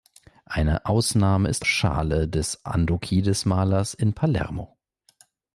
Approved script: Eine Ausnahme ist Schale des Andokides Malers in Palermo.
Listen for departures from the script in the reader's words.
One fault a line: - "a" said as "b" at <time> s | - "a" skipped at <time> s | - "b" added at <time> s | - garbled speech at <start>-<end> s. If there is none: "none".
none